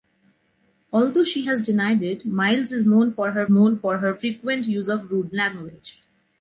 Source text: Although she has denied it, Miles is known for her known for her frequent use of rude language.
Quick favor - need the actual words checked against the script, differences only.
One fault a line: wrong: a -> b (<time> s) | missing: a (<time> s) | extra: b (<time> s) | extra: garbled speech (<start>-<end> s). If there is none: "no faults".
no faults